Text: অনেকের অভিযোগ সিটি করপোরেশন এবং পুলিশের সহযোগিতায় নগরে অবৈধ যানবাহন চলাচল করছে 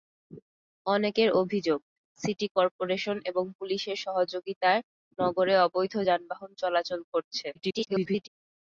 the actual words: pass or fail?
fail